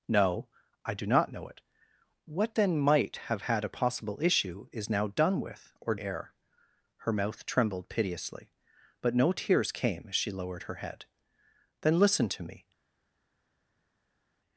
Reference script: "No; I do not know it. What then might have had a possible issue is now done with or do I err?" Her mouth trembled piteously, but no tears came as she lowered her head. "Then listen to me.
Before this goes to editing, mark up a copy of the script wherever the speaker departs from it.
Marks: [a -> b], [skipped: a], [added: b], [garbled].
"No; I do not know it. What then might have had a possible issue is now done with or [skipped: do I] err?" Her mouth trembled piteously, but no tears came as she lowered her head. "Then listen to me.